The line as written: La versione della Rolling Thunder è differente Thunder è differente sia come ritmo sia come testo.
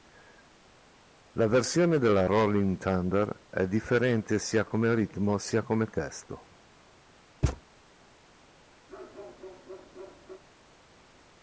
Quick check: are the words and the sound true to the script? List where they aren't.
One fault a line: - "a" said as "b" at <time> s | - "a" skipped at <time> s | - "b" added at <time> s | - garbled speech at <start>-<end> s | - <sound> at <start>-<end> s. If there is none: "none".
- "Thunder è differente" skipped at 4.4 s
- thud at 7.4-7.6 s
- bark at 8.9-10.4 s